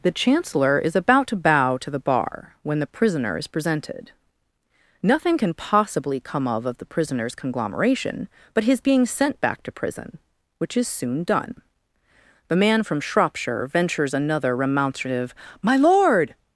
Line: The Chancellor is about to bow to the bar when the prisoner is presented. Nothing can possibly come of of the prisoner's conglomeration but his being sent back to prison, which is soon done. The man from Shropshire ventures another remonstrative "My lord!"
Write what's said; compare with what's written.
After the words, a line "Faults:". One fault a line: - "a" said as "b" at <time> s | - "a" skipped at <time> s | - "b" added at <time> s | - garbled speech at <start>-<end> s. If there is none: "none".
The Chancellor is about to bow to the bar when the prisoner is presented. Nothing can possibly come of of the prisoner's conglomeration but his being sent back to prison, which is soon done. The man from Shropshire ventures another remonstrative "My lord!"
Faults:
none